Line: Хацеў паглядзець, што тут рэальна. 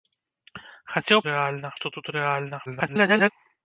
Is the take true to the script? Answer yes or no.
no